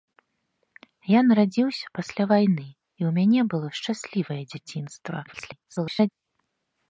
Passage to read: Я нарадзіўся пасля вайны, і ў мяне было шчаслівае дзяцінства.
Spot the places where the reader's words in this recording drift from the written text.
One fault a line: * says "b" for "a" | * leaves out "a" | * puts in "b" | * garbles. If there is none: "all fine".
* garbles